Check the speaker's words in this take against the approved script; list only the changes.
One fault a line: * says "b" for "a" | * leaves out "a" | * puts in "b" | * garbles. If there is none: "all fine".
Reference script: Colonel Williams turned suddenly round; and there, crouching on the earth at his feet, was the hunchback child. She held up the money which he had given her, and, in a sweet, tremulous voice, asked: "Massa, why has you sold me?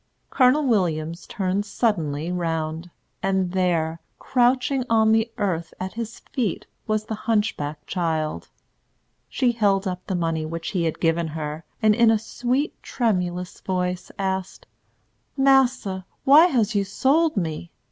all fine